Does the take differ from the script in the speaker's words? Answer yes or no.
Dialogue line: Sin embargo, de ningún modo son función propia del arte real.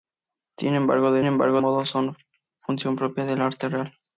yes